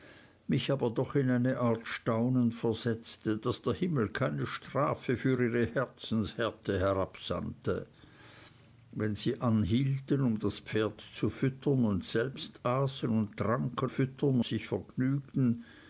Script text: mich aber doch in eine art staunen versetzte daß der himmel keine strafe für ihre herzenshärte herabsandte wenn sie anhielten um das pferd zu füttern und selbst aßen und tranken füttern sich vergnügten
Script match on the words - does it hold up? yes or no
yes